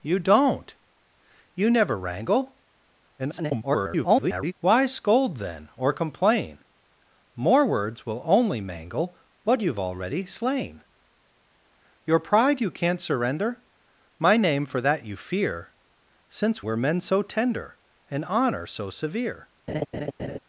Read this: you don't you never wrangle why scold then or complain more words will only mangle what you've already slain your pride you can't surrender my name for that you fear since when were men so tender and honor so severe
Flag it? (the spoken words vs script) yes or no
yes